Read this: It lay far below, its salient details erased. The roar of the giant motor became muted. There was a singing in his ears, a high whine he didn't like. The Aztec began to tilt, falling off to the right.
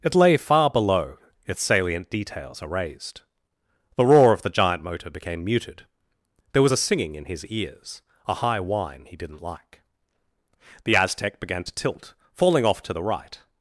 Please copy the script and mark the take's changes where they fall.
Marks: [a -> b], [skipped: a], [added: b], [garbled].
It lay far below, its salient details erased. The roar of the giant motor became muted. There was a singing in his ears, a high whine he didn't like. The Aztec began to tilt, falling off to the right.